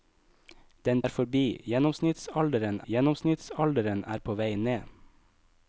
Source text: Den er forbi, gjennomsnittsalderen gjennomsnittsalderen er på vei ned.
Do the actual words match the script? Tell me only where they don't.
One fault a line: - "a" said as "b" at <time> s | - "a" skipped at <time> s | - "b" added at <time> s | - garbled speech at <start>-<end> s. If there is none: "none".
none